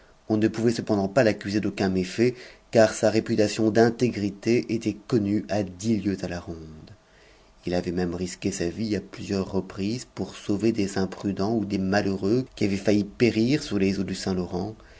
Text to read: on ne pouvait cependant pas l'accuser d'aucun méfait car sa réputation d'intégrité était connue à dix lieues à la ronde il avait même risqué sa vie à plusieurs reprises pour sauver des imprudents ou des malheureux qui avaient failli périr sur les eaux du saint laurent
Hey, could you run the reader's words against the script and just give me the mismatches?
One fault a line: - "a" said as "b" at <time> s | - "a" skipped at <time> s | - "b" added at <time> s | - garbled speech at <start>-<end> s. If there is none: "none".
none